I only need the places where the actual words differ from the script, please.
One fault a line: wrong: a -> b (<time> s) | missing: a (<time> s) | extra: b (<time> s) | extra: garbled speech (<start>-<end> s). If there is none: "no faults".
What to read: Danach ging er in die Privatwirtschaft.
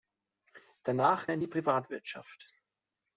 missing: ging (1.3 s)